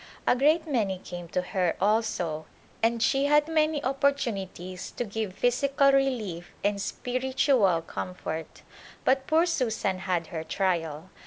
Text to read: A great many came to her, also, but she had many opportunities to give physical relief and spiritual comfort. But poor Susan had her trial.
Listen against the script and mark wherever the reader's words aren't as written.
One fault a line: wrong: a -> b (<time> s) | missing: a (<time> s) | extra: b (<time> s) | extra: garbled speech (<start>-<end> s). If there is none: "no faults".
wrong: but -> and (2.8 s)